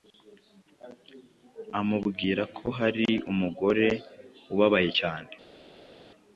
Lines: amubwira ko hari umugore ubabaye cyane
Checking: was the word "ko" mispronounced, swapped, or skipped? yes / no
no